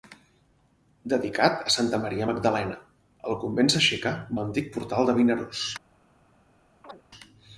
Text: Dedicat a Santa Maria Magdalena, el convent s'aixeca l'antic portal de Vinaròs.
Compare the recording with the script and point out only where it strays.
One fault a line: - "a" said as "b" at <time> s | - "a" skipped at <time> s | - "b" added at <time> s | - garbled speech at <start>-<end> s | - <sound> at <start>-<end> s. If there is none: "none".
- chirp at 6.8-7.0 s